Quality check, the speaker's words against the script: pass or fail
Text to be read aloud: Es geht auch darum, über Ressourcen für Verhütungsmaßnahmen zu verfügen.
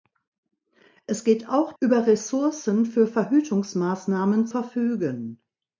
fail